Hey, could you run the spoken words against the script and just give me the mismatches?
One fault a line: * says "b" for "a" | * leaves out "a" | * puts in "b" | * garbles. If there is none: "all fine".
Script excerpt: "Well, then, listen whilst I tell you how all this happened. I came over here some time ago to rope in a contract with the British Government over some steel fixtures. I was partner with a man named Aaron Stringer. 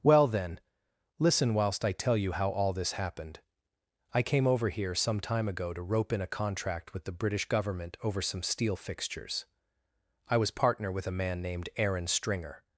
all fine